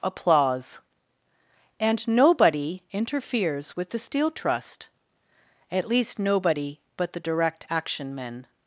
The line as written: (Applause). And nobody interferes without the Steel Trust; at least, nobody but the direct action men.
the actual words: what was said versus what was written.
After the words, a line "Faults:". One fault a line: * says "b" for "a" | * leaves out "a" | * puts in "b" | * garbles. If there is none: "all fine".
(Applause). And nobody interferes with the Steel Trust; at least, nobody but the direct action men.
Faults:
* says "with" for "without"